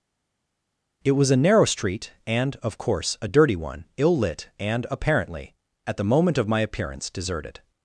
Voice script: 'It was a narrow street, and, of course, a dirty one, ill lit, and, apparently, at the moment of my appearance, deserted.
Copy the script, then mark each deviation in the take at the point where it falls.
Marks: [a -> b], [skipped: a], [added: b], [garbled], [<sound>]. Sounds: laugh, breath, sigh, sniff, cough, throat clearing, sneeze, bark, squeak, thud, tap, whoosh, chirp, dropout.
'It was a narrow street, and, of course, a dirty one, ill lit, and, apparently, at the moment of my appearance, deserted.